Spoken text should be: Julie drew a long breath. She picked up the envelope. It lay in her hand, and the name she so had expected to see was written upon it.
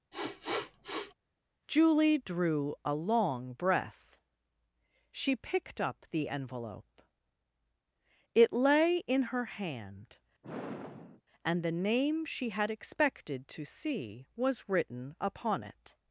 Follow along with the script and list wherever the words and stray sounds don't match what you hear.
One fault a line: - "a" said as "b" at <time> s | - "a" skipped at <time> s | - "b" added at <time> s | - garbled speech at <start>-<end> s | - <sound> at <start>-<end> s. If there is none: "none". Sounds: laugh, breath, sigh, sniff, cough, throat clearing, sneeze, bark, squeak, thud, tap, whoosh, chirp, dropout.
- sniff at 0.1-1.1 s
- sigh at 10.4-11.2 s
- "so" skipped at 12.5 s